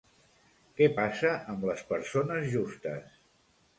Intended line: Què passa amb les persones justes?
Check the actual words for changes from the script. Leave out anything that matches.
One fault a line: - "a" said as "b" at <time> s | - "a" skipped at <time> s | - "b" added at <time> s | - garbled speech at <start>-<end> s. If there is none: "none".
none